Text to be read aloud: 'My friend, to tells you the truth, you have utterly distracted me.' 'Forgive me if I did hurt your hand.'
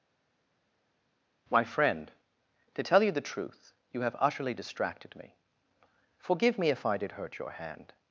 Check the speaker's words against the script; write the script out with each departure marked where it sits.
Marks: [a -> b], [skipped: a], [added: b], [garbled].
'My friend, to [tells -> tell] you the truth, you have utterly distracted me.' 'Forgive me if I did hurt your hand.'